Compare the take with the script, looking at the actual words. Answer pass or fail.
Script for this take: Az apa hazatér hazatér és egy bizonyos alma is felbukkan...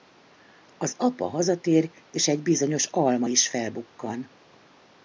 fail